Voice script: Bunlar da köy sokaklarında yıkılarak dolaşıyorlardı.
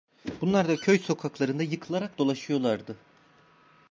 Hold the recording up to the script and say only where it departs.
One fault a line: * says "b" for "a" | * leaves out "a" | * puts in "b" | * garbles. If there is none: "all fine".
all fine